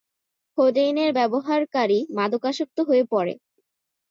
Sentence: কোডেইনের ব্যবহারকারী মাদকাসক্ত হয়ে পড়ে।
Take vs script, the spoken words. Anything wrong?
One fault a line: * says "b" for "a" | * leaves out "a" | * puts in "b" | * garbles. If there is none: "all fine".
all fine